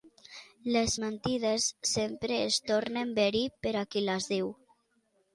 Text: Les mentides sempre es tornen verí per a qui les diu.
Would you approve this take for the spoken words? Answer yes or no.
yes